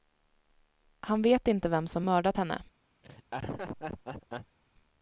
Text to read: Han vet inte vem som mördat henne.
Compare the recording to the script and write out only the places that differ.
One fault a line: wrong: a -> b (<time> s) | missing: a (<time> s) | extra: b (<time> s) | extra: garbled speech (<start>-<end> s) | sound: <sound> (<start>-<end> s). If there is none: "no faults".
sound: laugh (3.0-4.6 s)